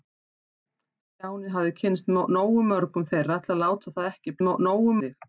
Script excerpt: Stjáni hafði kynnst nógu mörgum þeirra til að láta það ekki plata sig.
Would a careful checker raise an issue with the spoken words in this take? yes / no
yes